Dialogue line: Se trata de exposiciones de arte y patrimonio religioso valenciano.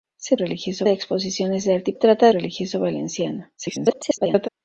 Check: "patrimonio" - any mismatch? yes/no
yes